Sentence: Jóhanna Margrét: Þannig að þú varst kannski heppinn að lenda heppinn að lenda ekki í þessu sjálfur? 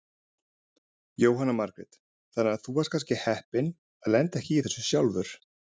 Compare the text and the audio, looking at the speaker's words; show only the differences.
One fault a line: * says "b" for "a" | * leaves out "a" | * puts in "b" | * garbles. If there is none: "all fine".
* leaves out "heppinn að lenda"